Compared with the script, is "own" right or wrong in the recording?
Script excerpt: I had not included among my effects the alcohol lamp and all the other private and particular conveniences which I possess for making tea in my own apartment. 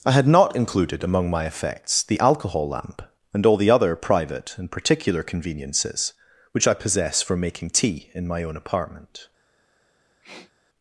right